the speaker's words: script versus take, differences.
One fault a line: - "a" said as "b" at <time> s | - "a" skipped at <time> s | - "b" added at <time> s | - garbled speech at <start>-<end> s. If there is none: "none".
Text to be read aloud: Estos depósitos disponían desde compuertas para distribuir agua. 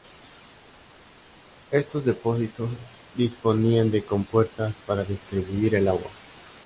- "desde" said as "de" at 3.9 s
- "el" added at 5.8 s